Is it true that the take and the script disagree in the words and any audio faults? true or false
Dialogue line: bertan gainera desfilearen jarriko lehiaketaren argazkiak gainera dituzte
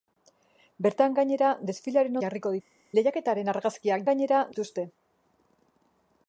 false